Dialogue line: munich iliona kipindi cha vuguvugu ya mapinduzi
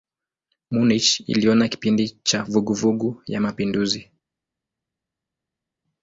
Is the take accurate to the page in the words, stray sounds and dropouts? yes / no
yes